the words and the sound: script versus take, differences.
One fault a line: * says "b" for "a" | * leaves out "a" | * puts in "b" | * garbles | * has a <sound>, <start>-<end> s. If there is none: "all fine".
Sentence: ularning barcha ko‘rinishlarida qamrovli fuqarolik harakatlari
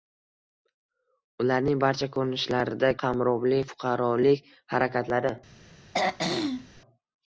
* has a throat clearing, 5.9-6.8 s